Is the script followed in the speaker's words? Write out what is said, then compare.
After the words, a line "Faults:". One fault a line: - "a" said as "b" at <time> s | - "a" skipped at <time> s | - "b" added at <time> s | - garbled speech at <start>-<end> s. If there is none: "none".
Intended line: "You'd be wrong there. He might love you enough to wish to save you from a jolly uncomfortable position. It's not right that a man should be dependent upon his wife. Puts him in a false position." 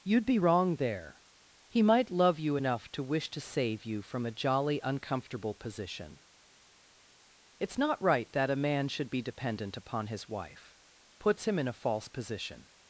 "You'd be wrong there. He might love you enough to wish to save you from a jolly uncomfortable position. It's not right that a man should be dependent upon his wife. Puts him in a false position."
Faults:
none